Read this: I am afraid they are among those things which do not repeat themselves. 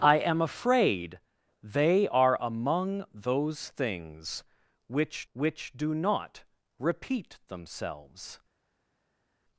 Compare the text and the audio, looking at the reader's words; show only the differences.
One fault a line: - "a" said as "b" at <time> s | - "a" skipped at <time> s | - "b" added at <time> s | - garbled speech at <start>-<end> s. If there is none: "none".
- "which" added at 5.3 s